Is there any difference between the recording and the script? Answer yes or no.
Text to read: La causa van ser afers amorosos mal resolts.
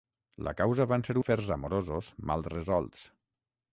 no